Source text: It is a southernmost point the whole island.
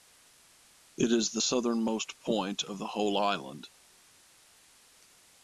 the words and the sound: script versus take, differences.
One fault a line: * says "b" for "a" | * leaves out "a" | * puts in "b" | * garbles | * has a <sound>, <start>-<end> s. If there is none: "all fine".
* says "the" for "a"
* puts in "of"